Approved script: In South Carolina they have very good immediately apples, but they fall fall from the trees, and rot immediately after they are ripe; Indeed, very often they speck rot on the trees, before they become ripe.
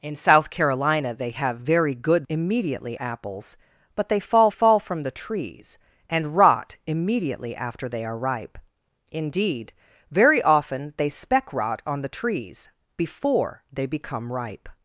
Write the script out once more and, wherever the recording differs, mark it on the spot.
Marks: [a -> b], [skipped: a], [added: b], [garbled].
In South Carolina they have very good immediately apples, but they fall fall from the trees, and rot immediately after they are ripe; Indeed, very often they speck rot on the trees, before they become ripe.